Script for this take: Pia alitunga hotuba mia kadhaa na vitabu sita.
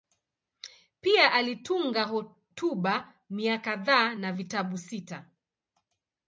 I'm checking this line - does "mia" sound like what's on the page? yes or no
yes